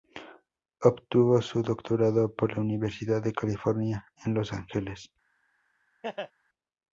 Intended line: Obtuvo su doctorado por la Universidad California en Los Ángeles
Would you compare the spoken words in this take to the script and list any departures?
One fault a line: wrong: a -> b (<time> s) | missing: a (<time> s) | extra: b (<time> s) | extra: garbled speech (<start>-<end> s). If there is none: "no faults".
extra: de (3.2 s)